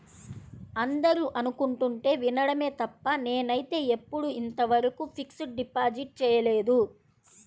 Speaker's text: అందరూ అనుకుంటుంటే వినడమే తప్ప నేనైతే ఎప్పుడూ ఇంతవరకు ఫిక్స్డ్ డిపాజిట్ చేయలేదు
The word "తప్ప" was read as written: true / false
true